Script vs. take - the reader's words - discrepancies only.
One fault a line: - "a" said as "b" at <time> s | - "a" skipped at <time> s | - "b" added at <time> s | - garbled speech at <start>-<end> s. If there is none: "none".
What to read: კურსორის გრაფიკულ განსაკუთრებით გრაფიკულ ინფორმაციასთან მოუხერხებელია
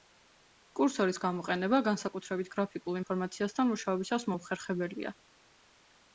- "გრაფიკულ" said as "გამოყენება" at 1.2 s
- "მუშაობისას" added at 3.7 s